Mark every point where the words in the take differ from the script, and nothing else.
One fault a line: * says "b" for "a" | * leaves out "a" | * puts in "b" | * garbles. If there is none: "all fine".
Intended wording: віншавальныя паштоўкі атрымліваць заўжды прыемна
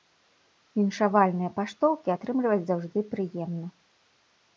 all fine